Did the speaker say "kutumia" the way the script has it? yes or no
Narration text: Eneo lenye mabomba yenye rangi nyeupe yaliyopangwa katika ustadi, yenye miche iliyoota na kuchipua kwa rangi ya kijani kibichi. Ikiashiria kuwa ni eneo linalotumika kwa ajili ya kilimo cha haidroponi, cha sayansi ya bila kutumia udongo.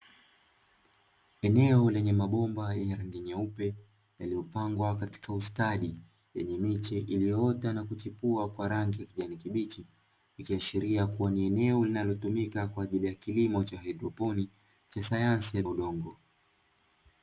no